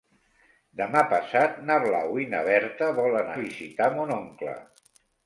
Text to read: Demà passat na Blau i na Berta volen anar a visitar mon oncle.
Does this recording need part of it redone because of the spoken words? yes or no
yes